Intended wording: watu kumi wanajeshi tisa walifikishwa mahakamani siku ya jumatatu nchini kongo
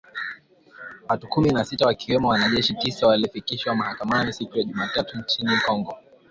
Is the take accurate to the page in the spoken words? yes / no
no